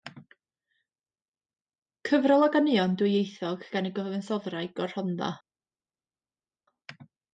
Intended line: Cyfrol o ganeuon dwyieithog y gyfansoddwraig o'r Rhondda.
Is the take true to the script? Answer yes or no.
no